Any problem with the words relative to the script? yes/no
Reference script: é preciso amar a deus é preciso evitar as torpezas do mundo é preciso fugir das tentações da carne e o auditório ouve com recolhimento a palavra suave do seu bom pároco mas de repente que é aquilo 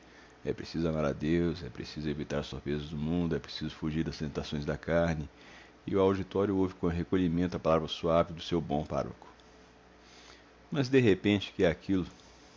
no